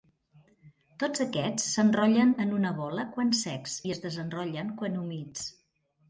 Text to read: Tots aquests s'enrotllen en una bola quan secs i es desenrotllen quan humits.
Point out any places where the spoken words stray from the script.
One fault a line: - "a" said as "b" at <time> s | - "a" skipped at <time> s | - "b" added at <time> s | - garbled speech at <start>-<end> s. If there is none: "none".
none